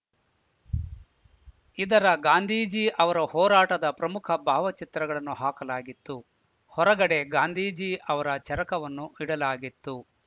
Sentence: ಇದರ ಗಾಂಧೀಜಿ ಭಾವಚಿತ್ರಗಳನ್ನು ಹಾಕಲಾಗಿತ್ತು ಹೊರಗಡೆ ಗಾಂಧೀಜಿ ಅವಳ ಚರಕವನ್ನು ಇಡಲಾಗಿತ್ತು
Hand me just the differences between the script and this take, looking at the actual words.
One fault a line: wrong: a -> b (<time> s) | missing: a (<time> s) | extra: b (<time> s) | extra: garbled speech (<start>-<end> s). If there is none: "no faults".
extra: ಅವರ ಹೋರಾಟದ ಪ್ರಮುಖ (3.0 s)
wrong: ಅವಳ -> ಅವರ (8.1 s)